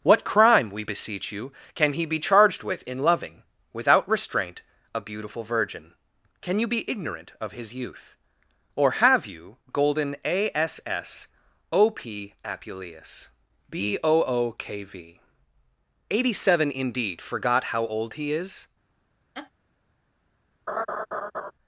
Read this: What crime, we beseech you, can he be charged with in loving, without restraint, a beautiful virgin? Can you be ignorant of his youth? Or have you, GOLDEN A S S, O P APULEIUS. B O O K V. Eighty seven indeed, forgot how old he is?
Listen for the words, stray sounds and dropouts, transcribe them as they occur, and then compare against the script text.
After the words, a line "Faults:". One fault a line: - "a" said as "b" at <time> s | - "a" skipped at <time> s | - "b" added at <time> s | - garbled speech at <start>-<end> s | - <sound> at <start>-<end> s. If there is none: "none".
What crime, we beseech you, can he be charged with in loving, without restraint, a beautiful virgin? Can you be ignorant of his youth? Or have you, GOLDEN A S S, O P APULEIUS. B O O K V. Eighty seven indeed, forgot how old he is?
Faults:
- laugh at 19.3-19.5 s
- laugh at 20.7-21.5 s